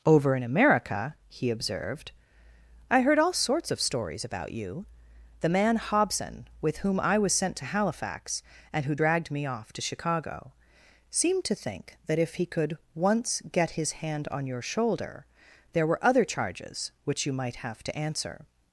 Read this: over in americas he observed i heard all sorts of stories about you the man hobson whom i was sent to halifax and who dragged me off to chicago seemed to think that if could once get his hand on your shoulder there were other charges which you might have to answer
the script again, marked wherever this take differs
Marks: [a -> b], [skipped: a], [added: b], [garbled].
over in [americas -> america] he observed i heard all sorts of stories about you the man hobson [added: with] whom i was sent to halifax and who dragged me off to chicago seemed to think that if [added: he] could once get his hand on your shoulder there were other charges which you might have to answer